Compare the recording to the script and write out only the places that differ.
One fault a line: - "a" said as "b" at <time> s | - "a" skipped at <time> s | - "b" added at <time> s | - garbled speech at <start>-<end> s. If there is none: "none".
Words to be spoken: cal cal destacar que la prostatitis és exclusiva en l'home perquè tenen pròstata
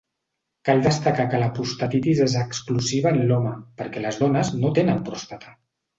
- "cal" skipped at 0.8 s
- "les dones no" added at 4.0 s